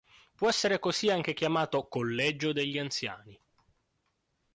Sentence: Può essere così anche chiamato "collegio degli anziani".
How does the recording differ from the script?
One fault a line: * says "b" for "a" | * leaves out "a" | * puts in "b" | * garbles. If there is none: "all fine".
all fine